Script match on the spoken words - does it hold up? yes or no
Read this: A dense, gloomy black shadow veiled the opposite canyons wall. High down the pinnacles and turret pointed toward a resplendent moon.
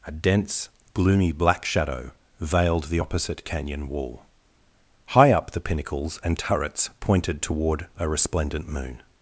no